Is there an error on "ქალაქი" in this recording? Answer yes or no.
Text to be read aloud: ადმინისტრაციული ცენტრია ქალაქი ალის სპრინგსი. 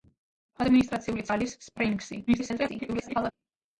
yes